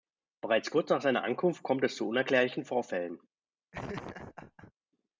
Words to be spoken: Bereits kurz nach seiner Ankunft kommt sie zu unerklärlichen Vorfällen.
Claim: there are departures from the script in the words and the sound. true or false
true